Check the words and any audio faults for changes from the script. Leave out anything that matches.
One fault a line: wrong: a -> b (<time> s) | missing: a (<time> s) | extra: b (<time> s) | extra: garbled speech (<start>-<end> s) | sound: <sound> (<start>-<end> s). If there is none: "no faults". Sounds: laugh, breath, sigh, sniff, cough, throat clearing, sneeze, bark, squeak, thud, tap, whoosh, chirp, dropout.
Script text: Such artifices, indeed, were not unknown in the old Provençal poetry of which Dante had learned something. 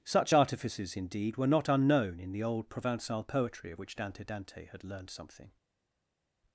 extra: Dante (4.2 s)